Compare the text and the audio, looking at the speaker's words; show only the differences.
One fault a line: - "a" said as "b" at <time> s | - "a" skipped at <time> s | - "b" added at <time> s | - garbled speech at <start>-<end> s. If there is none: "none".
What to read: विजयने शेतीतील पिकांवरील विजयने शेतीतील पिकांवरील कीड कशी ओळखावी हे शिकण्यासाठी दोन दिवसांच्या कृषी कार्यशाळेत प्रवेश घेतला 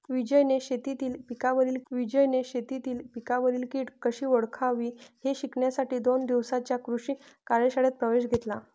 none